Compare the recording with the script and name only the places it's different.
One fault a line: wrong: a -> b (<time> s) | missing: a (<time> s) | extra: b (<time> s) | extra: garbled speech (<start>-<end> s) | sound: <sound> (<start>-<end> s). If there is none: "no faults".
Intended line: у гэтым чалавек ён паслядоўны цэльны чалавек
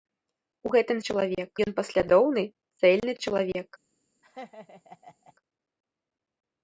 sound: laugh (4.2-5.3 s)